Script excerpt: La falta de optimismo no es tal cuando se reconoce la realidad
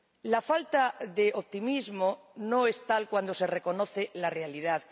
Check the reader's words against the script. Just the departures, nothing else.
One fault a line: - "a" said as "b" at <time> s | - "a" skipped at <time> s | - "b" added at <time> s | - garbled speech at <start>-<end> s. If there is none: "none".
none